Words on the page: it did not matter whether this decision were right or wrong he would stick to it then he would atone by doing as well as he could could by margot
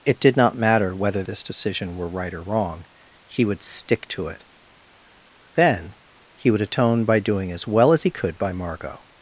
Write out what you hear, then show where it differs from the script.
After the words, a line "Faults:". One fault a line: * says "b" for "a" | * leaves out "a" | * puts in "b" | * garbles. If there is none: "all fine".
it did not matter whether this decision were right or wrong he would stick to it then he would atone by doing as well as he could by margot
Faults:
* leaves out "could"